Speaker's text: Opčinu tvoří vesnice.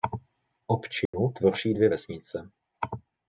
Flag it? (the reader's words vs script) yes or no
yes